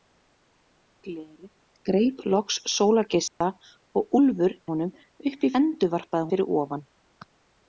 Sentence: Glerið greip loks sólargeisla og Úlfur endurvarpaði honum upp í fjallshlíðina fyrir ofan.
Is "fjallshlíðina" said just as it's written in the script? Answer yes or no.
no